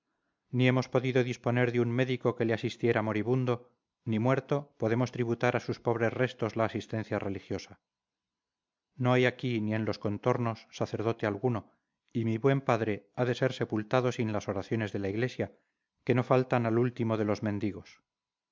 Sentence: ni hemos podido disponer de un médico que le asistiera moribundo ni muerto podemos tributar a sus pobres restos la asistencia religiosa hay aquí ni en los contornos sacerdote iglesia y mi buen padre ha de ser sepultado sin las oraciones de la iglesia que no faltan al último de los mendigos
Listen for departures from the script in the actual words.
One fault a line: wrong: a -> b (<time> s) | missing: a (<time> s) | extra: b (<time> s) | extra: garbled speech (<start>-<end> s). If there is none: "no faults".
extra: no (8.9 s)
wrong: iglesia -> alguno (11.3 s)